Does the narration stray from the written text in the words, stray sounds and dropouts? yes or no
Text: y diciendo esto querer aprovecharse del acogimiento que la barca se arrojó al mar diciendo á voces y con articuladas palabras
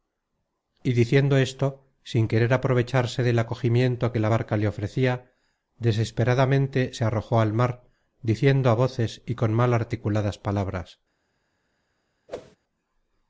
yes